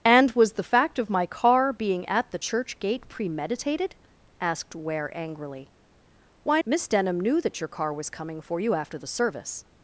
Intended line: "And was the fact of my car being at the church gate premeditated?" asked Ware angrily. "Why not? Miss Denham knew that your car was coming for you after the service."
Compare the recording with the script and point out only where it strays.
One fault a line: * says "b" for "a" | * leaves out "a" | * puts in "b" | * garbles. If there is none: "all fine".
* leaves out "not"